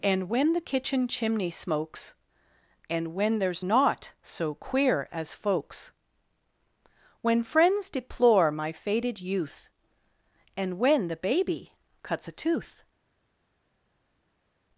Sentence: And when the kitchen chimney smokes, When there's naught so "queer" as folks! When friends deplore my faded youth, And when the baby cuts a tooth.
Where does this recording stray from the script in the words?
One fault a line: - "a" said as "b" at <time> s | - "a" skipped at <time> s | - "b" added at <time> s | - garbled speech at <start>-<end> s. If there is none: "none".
- "And" added at 2.9 s